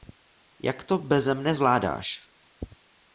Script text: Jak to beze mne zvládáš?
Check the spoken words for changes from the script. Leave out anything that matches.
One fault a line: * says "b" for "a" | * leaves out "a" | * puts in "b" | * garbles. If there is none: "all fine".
all fine